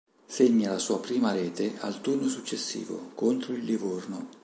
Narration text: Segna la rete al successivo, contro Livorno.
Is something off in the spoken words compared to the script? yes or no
yes